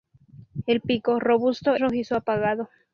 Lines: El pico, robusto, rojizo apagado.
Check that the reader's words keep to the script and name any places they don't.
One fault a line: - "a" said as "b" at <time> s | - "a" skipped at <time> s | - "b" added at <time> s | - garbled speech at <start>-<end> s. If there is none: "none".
none